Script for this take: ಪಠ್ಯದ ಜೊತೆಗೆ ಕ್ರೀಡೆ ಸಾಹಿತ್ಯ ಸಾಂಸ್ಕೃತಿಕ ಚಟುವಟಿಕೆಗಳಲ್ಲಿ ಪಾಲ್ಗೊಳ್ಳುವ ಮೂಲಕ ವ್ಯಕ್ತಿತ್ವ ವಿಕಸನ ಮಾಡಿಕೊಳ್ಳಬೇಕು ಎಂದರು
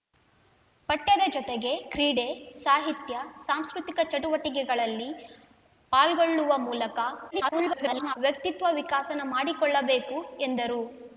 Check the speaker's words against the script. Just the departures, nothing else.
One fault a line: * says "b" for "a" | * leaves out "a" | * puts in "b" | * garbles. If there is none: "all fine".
* garbles